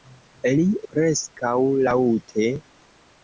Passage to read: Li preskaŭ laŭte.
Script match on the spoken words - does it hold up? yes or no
yes